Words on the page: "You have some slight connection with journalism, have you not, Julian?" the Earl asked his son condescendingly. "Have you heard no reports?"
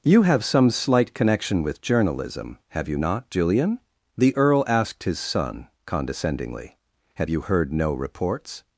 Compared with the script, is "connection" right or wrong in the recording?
right